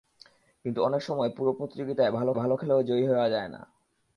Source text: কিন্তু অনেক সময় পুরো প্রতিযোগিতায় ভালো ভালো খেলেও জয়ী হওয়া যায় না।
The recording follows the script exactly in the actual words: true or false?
true